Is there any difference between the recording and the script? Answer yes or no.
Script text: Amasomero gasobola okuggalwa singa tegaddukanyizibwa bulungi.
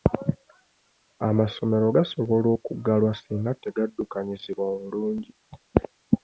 no